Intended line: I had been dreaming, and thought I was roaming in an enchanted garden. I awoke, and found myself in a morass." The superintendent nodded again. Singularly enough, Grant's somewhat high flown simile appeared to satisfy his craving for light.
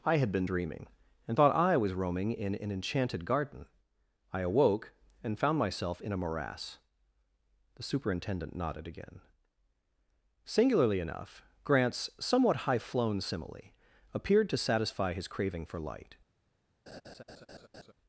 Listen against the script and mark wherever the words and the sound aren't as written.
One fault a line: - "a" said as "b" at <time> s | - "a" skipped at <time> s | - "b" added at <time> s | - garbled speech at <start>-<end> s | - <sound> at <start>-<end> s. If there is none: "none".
- laugh at 16.9-17.9 s